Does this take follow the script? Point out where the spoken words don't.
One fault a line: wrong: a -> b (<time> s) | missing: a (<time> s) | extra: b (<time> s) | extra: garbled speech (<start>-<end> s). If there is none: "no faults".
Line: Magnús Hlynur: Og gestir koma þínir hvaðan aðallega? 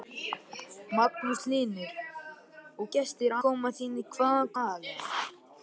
no faults